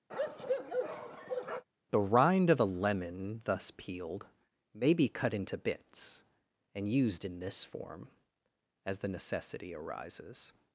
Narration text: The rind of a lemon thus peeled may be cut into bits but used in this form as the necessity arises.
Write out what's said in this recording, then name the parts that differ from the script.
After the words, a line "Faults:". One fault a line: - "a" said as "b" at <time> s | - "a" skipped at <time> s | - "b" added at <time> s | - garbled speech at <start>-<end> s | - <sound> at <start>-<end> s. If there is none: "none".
The rind of a lemon thus peeled may be cut into bits and used in this form as the necessity arises.
Faults:
- bark at 0.1-1.6 s
- "but" said as "and" at 6.7 s